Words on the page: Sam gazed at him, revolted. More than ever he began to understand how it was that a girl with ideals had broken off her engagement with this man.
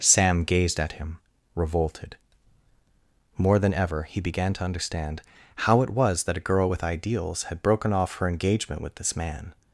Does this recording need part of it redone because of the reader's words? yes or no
no